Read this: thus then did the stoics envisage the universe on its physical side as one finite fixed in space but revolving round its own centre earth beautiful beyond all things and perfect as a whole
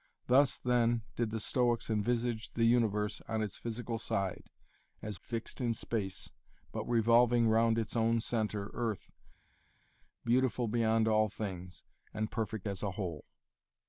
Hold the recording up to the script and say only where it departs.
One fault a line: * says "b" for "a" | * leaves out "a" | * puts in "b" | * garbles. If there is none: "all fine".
* leaves out "one finite"